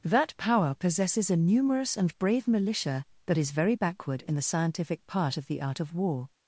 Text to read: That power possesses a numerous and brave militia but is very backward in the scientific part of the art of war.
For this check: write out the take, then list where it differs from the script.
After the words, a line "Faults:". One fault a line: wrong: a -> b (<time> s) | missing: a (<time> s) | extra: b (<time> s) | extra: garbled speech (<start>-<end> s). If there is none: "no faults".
That power possesses a numerous and brave militia that is very backward in the scientific part of the art of war.
Faults:
wrong: but -> that (3.3 s)